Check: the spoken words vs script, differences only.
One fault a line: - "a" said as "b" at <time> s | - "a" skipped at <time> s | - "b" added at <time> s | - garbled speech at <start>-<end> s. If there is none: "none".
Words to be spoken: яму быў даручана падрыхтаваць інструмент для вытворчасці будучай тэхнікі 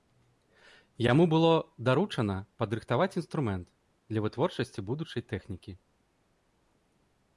- "быў" said as "было" at 1.3 s